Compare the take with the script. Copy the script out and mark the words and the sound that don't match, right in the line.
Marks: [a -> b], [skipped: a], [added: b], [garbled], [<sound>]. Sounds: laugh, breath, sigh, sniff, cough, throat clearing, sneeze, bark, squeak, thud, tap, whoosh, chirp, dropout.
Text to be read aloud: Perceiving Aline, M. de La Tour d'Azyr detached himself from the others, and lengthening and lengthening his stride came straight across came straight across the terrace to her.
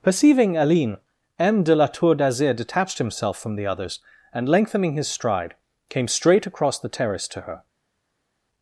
Perceiving Aline, M. de La Tour d'Azyr detached himself from the others, and lengthening [skipped: and lengthening] his stride came straight across [skipped: came straight across] the terrace to her.